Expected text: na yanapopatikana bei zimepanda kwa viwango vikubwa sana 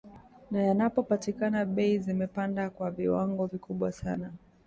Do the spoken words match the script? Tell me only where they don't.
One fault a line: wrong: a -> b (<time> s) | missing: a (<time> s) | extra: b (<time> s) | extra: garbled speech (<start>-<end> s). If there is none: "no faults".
no faults